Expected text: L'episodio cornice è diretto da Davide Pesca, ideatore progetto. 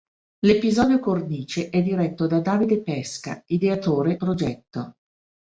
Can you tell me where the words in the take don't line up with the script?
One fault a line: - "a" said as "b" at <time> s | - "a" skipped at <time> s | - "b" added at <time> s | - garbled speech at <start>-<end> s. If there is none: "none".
none